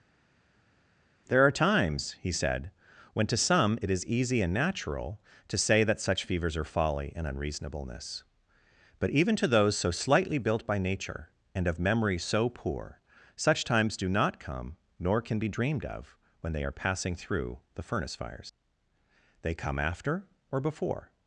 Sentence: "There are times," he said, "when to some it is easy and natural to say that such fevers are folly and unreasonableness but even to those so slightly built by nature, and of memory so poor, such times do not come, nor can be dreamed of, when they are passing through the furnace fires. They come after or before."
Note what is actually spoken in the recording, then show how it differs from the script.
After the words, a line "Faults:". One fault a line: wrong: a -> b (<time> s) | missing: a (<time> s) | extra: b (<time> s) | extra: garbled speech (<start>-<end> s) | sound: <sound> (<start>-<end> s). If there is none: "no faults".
"There are times," he said, "when to some it is easy and natural to say that such fevers are folly and unreasonableness but even to those so slightly built by nature, and of memory so poor, such times do not come, nor can be dreamed of, when they are passing through the furnace fires. They come after or before."
Faults:
no faults